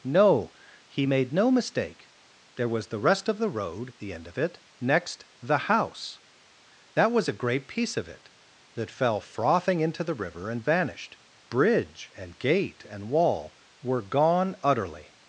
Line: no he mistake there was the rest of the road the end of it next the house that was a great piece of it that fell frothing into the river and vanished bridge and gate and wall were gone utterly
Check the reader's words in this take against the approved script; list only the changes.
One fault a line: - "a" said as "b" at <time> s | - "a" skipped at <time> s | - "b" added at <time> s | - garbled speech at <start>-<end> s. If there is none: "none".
- "made no" added at 1.0 s